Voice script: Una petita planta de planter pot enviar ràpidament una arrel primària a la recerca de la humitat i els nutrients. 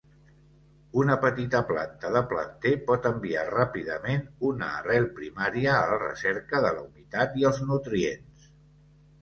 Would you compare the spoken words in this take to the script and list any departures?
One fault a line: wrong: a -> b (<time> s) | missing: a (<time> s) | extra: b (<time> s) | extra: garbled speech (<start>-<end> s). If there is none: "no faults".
no faults